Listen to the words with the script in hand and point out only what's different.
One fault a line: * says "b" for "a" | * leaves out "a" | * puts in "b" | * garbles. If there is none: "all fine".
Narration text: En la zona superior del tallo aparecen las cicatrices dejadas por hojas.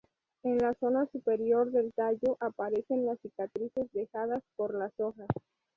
* puts in "las"